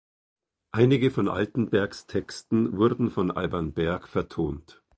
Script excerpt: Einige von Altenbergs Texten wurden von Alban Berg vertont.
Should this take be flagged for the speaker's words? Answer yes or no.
no